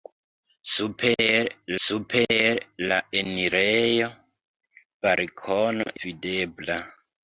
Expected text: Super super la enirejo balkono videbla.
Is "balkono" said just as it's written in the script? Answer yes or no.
yes